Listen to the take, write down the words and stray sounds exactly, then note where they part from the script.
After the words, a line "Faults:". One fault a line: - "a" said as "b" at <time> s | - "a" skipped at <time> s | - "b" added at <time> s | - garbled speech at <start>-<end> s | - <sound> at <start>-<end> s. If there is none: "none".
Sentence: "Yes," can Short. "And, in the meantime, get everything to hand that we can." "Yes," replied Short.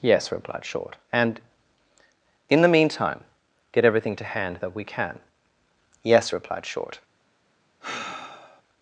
"Yes," replied Short. "And, in the meantime, get everything to hand that we can." "Yes," replied Short.
Faults:
- "can" said as "replied" at 0.3 s
- sigh at 7.8-8.6 s